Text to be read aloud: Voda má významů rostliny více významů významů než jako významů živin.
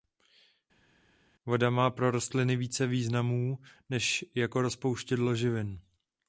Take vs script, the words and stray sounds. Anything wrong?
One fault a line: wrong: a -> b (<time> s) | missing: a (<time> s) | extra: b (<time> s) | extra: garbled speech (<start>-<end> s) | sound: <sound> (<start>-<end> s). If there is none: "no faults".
wrong: významů -> pro (1.9 s)
missing: významů (3.6 s)
wrong: významů -> rozpouštědlo (4.6 s)